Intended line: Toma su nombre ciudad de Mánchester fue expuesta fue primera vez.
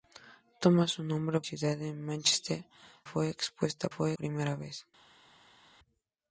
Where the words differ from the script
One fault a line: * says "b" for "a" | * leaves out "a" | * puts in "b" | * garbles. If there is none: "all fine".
all fine